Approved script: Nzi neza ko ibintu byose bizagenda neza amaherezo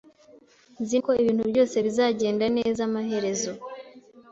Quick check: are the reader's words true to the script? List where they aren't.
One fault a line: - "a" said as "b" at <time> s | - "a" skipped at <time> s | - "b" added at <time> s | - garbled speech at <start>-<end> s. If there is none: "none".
- "neza" skipped at 1.0 s